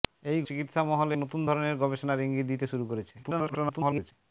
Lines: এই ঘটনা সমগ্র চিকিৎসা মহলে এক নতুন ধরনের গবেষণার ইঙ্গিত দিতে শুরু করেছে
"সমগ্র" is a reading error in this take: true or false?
true